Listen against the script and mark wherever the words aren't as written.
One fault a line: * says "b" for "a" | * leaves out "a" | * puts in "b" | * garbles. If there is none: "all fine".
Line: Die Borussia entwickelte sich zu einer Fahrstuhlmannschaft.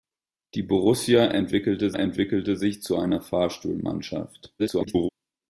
* puts in "entwickelte"
* garbles